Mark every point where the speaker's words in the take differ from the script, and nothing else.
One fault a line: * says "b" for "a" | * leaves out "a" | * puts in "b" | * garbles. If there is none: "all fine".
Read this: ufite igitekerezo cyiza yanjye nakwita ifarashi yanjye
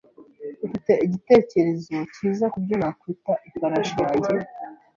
* says "kubyo" for "yanjye"